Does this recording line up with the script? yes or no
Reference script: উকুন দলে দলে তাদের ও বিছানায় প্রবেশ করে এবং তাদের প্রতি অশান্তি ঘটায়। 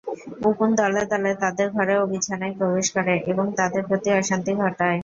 no